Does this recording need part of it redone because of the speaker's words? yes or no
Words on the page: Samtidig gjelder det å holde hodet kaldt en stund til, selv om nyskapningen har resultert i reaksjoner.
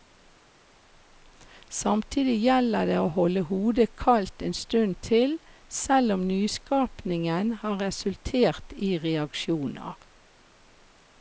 no